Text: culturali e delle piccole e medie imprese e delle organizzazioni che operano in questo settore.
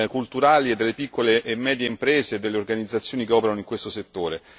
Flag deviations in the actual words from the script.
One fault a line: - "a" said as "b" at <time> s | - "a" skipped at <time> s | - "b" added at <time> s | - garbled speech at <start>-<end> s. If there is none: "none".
none